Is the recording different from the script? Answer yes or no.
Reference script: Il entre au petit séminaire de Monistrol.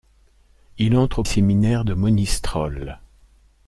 yes